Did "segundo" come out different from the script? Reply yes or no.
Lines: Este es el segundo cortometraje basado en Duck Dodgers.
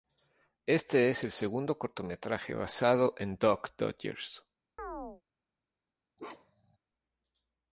no